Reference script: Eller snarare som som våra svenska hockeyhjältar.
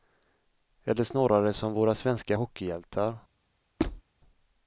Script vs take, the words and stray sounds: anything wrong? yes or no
yes